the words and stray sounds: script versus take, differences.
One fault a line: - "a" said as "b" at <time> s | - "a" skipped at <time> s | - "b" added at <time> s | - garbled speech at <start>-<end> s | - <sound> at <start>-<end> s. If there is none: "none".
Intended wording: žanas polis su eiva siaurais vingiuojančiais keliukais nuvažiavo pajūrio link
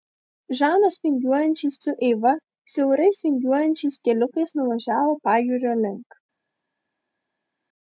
- "polis" said as "vingiuojančiais" at 1.1 s